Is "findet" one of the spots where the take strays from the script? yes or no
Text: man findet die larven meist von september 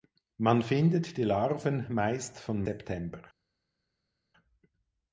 no